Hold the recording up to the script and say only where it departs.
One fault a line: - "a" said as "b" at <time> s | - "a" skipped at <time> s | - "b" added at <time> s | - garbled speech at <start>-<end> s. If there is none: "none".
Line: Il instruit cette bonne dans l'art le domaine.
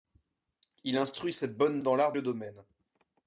none